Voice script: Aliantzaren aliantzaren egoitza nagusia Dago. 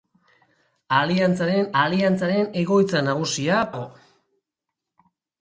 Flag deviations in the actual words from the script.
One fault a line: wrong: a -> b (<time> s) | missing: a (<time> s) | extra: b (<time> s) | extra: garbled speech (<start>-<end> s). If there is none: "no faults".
no faults